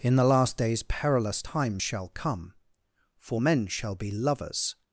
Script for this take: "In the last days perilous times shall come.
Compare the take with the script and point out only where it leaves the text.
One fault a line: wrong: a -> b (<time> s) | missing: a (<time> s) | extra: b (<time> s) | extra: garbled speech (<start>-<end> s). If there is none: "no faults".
extra: For men shall be lovers (3.2 s)